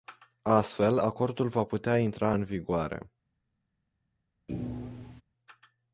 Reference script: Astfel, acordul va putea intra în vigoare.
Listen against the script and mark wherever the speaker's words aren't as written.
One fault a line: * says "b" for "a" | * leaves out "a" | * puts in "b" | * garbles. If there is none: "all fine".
all fine